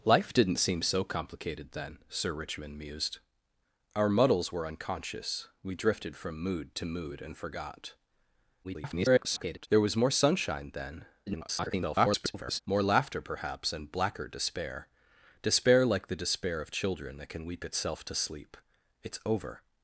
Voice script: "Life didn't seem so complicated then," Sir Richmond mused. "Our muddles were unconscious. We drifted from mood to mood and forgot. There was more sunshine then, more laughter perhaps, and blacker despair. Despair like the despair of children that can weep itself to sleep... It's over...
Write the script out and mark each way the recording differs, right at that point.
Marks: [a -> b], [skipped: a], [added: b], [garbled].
"Life didn't seem so complicated then," Sir Richmond mused. "Our muddles were unconscious. We drifted from mood to mood and forgot. [garbled] There was more sunshine then, [garbled] more laughter perhaps, and blacker despair. Despair like the despair of children that can weep itself to sleep... It's over...